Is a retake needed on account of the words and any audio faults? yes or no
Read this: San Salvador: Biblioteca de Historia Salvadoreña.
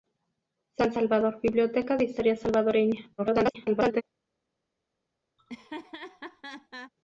yes